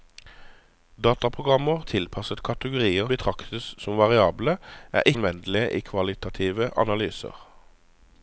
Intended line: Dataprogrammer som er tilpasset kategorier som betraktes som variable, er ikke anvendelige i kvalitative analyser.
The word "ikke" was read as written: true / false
false